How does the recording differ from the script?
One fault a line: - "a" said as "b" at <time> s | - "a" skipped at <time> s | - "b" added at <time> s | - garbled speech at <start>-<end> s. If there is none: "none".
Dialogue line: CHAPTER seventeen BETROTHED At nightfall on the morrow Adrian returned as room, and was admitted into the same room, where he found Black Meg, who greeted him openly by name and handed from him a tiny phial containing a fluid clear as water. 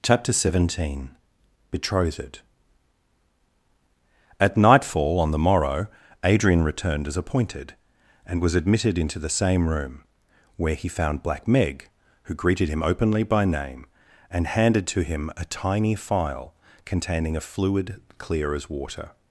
- "room" said as "appointed" at 7.2 s
- "from" said as "to" at 14.9 s